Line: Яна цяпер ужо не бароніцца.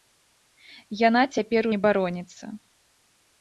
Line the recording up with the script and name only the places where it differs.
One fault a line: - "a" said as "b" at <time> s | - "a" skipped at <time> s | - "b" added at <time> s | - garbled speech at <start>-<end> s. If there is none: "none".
- "ужо" skipped at 1.6 s